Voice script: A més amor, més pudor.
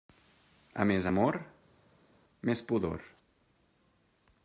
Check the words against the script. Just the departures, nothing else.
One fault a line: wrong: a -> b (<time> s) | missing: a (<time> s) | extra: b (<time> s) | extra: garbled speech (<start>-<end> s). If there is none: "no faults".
no faults